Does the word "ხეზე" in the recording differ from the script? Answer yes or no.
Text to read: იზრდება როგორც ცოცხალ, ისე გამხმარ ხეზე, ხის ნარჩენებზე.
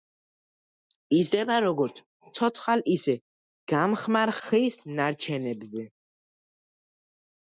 yes